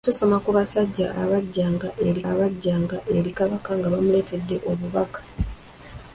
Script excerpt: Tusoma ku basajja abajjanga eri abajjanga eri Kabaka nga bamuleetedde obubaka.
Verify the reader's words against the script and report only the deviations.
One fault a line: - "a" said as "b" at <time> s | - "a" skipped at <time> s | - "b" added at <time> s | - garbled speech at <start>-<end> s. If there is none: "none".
none